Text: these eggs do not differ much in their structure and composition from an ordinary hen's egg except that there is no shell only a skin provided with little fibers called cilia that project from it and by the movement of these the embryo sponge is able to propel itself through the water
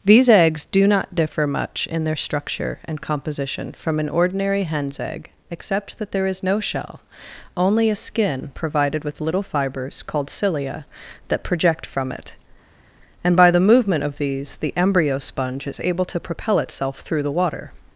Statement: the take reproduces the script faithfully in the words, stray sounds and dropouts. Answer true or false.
true